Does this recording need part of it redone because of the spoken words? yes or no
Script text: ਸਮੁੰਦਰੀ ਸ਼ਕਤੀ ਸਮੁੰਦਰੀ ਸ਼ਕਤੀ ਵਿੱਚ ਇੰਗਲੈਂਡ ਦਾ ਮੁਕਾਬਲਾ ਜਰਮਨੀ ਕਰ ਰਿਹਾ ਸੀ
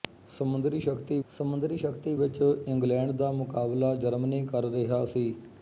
no